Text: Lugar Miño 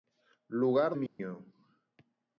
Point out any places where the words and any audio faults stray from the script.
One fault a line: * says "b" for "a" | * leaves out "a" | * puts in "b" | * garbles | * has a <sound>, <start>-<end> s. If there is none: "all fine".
* has a dropout, 1.1-1.2 s